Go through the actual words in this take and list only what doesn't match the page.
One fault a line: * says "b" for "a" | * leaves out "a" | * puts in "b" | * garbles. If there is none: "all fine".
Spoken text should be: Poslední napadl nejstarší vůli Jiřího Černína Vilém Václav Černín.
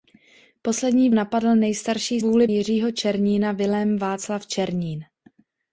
all fine